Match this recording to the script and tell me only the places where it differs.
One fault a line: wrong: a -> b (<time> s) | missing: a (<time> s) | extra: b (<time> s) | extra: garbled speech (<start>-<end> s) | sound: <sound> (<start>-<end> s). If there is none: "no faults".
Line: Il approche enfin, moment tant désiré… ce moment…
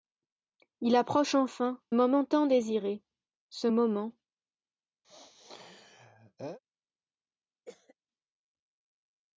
sound: sneeze (5.0-6.6 s)
sound: cough (7.7-7.9 s)